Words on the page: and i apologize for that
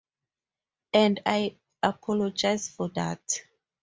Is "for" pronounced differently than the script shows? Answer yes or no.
no